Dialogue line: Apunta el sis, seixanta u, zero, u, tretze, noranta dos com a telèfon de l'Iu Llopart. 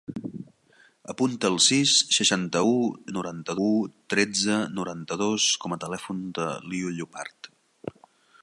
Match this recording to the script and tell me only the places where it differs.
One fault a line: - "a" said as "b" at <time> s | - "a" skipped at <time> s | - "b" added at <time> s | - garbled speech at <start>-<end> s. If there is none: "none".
- "zero" said as "noranta" at 3.2 s